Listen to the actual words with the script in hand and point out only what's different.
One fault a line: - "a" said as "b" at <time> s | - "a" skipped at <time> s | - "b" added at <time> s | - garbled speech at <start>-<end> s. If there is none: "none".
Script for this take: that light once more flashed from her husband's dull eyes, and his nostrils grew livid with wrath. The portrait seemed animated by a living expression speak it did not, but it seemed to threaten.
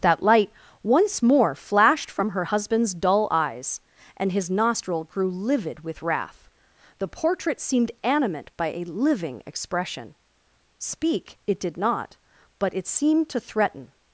- "nostrils" said as "nostril" at 4.5 s
- "animated" said as "animate" at 8.0 s